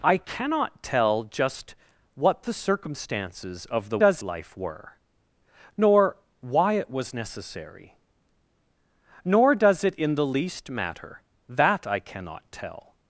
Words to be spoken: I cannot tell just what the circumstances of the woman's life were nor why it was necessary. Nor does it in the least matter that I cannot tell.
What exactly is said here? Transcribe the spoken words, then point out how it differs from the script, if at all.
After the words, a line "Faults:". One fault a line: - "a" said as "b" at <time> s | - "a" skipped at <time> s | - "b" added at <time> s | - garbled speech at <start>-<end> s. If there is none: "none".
I cannot tell just what the circumstances of the does life were nor why it was necessary. Nor does it in the least matter that I cannot tell.
Faults:
- "woman's" said as "does" at 3.9 s